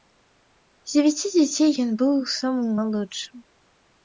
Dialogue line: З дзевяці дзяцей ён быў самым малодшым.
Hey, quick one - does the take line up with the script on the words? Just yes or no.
yes